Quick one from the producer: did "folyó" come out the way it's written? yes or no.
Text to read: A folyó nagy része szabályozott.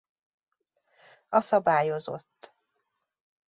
no